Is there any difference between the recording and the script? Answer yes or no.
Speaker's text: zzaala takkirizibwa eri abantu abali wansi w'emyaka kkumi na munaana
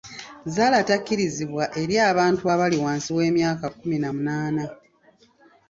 no